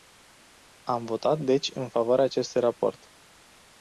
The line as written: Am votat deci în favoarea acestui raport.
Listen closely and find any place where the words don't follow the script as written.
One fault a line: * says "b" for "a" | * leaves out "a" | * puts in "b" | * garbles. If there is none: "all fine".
all fine